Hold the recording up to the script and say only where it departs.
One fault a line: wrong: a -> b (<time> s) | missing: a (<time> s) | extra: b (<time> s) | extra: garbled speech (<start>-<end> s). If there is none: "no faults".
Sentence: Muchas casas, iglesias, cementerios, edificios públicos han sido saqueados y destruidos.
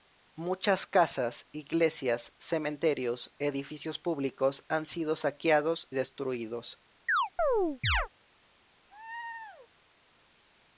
missing: y (5.9 s)